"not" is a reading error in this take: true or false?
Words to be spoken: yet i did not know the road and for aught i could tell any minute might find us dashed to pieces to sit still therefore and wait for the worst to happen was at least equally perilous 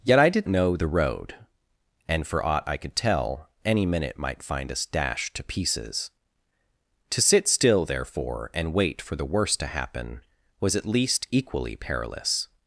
true